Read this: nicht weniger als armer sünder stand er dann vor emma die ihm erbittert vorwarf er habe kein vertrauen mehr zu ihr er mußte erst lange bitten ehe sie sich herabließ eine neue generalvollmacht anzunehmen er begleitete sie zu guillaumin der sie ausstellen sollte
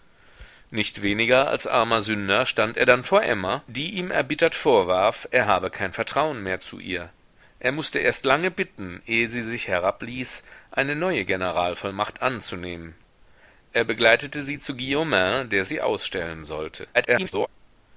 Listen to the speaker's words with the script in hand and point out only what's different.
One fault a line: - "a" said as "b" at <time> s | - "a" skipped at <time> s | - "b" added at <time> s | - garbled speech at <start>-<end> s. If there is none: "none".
- garbled speech at 16.9-17.5 s